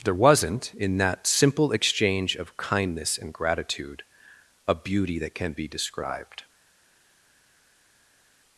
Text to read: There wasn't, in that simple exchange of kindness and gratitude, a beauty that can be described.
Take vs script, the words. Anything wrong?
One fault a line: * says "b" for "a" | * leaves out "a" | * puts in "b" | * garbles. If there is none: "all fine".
all fine